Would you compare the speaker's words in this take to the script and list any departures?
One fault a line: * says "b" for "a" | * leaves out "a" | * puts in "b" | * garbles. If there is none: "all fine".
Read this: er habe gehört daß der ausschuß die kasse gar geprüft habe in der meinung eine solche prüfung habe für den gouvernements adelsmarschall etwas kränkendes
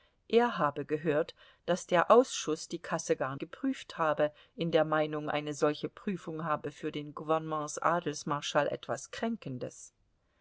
all fine